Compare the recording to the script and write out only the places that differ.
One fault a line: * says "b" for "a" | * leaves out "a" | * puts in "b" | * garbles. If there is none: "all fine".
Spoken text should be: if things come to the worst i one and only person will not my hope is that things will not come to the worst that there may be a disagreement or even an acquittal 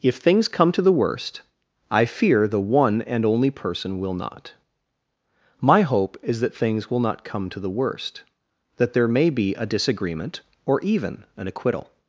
* puts in "fear the"